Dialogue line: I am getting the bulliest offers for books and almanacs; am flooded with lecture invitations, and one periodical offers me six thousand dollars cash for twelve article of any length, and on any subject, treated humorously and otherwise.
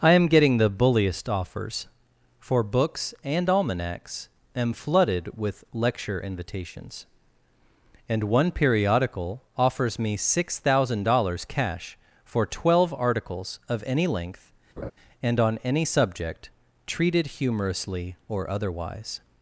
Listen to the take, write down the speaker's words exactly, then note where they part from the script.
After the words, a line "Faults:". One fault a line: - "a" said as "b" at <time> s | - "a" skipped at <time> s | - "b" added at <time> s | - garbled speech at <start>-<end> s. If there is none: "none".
I am getting the bulliest offers for books and almanacs; am flooded with lecture invitations, and one periodical offers me six thousand dollars cash for twelve articles of any length, and on any subject, treated humorously or otherwise.
Faults:
- "article" said as "articles" at 12.9 s
- "and" said as "or" at 18.3 s